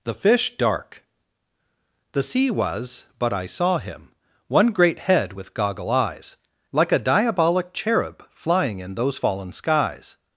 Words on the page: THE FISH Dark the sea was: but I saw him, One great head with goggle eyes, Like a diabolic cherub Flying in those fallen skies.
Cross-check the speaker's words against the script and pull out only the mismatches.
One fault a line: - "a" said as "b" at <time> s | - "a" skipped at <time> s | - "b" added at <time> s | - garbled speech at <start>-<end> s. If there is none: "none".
none